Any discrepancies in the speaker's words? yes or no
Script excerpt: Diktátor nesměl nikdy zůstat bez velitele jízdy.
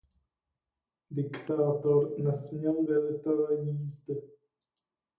yes